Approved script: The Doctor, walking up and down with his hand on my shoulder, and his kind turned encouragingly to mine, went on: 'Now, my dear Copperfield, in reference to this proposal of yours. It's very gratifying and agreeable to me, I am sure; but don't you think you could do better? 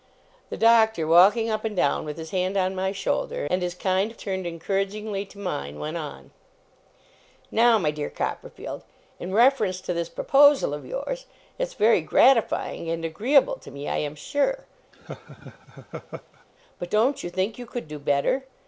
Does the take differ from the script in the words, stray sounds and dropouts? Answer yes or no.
yes